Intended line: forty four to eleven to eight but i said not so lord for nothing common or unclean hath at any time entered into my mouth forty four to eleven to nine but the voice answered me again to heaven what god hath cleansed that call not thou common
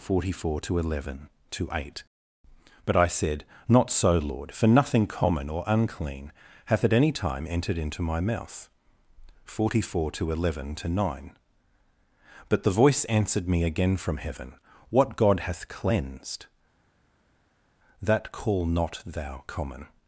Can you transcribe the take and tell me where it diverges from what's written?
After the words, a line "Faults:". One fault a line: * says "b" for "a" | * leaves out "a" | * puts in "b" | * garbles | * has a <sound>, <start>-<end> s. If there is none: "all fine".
forty four to eleven to eight but i said not so lord for nothing common or unclean hath at any time entered into my mouth forty four to eleven to nine but the voice answered me again from heaven what god hath cleansed that call not thou common
Faults:
* says "from" for "to"